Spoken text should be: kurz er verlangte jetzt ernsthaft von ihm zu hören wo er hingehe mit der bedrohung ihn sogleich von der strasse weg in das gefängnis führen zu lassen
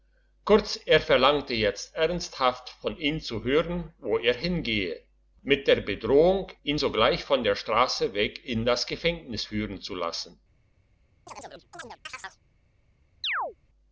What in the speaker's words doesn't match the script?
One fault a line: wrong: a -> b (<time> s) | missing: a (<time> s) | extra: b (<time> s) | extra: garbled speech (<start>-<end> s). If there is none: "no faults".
no faults